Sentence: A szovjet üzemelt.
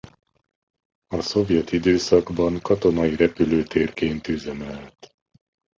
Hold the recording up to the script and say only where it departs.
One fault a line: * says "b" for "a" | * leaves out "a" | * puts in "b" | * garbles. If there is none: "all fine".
* puts in "időszakban katonai repülőtérként"